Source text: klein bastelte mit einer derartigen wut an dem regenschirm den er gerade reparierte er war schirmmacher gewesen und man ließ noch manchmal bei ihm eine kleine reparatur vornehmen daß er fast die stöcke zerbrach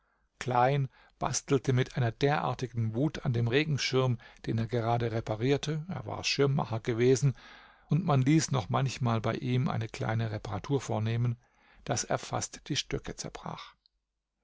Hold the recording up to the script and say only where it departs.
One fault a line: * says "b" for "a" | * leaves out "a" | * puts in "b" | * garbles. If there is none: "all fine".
all fine